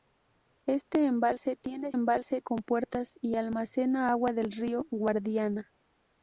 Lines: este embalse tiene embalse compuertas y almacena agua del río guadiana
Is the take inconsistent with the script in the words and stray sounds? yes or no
no